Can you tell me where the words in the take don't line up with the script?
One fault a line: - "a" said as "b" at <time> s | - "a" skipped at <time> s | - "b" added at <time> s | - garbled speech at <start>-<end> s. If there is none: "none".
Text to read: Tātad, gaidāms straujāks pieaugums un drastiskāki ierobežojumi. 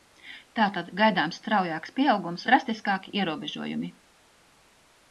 - "un" skipped at 2.5 s